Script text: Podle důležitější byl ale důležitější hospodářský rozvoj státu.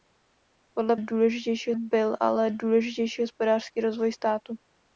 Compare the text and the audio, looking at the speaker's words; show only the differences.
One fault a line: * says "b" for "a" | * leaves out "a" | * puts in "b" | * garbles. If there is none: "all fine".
all fine